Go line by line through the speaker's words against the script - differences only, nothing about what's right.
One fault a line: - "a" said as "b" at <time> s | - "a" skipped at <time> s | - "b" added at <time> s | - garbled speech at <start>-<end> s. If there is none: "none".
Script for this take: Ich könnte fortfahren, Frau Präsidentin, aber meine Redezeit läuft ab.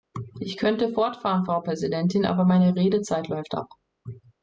none